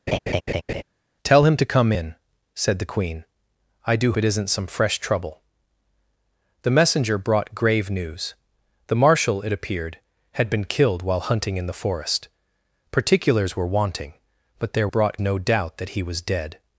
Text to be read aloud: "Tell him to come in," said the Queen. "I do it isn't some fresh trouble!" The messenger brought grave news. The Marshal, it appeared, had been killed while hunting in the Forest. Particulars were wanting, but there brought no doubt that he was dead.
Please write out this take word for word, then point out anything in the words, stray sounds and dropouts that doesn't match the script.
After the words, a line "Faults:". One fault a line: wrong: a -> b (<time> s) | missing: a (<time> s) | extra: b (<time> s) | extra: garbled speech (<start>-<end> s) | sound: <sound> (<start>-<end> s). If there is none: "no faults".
"Tell him to come in," said the Queen. "I do it isn't some fresh trouble!" The messenger brought grave news. The Marshal, it appeared, had been killed while hunting in the Forest. Particulars were wanting, but there brought no doubt that he was dead.
Faults:
sound: laugh (0.1-0.8 s)